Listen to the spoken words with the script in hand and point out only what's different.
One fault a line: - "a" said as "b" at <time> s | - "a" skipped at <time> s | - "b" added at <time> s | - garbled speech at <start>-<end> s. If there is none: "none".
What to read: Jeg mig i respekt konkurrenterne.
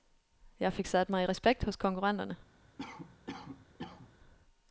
- "fik sat" added at 0.7 s
- "hos" added at 1.6 s